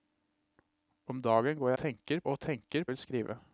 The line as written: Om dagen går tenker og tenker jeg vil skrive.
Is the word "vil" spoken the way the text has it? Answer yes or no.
yes